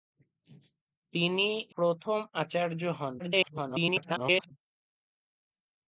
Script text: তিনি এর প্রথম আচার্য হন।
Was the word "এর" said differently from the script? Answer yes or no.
yes